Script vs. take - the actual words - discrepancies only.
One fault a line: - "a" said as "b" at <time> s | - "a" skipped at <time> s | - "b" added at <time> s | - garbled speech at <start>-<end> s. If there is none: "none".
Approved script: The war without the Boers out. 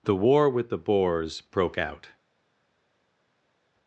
- "without" said as "with" at 0.5 s
- "broke" added at 1.4 s